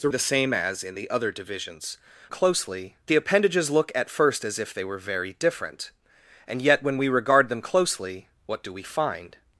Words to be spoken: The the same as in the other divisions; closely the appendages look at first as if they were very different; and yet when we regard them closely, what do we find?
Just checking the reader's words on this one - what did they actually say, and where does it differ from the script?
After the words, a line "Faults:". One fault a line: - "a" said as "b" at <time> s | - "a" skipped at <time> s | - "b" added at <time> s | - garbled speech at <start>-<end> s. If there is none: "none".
The the same as in the other divisions; closely the appendages look at first as if they were very different; and yet when we regard them closely, what do we find?
Faults:
none